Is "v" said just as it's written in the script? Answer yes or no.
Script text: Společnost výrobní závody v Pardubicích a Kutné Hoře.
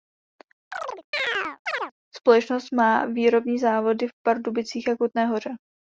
yes